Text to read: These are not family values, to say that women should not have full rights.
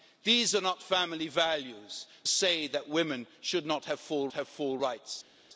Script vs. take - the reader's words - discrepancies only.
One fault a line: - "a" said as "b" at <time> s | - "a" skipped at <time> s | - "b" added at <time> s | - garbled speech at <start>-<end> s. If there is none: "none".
- "to" skipped at 2.0 s
- "have full" added at 4.3 s